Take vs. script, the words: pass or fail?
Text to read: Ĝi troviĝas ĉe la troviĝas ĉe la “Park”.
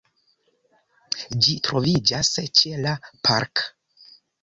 fail